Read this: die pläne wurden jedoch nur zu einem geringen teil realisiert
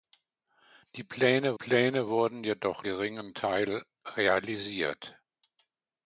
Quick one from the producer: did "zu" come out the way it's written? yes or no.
no